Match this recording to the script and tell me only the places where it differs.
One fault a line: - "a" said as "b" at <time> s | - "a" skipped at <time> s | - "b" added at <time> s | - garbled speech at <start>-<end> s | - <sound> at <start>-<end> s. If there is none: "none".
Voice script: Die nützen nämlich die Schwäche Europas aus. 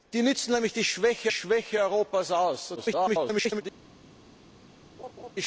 - "Schwäche" added at 1.3 s
- garbled speech at 2.8-3.6 s
- laugh at 5.0-5.3 s